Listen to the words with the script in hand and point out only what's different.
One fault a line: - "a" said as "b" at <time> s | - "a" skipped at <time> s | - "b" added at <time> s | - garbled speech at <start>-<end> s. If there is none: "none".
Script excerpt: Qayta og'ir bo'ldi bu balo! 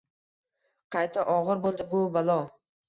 none